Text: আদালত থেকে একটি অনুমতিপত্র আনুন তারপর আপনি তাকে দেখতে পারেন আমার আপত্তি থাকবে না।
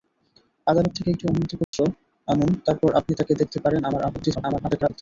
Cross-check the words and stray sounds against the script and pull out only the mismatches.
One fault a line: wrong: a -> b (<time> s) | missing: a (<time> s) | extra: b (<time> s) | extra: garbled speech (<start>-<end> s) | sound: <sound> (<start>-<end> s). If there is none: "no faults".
sound: dropout (1.6-1.7 s)
extra: garbled speech (4.3-5.0 s)